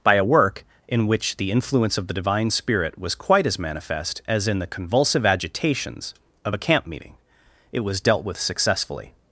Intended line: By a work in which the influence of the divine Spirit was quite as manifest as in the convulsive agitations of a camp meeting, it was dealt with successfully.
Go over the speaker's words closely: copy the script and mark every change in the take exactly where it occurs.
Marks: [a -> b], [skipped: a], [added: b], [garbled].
By a work in which the influence of the divine Spirit was quite as manifest as in the convulsive agitations of a camp meeting, it was dealt with successfully.